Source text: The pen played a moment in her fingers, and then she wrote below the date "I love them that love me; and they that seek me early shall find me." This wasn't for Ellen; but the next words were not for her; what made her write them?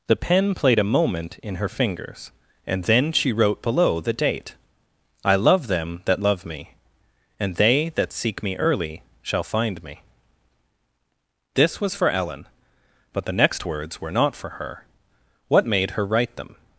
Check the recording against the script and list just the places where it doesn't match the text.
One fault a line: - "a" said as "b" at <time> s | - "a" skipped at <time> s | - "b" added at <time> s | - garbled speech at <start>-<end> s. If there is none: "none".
- "wasn't" said as "was" at 11.8 s